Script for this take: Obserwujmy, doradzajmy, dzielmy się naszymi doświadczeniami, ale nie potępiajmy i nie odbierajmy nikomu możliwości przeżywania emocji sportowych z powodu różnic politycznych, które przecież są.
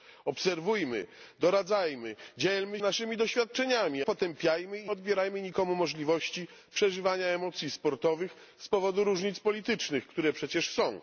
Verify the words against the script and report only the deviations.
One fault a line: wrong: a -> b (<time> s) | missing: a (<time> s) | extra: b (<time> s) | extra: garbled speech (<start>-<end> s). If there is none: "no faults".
missing: się (2.8 s)
missing: ale nie (4.0 s)
missing: nie (4.9 s)